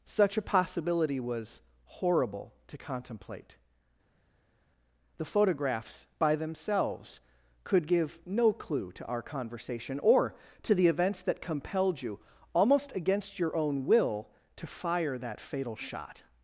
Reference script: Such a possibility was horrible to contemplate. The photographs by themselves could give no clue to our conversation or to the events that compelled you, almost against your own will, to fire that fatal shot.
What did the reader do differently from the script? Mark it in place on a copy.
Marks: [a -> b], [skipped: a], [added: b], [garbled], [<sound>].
Such a possibility was horrible to contemplate. The photographs by themselves could give no clue to our conversation or to the events that compelled you, almost against your own will, to fire that fatal shot.